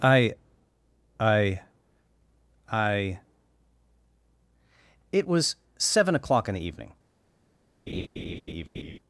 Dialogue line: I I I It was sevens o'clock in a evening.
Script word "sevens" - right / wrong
wrong